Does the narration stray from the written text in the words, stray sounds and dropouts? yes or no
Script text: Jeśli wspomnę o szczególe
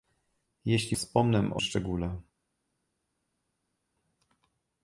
no